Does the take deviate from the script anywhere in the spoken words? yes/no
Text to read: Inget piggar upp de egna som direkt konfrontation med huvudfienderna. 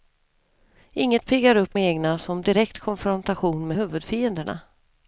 yes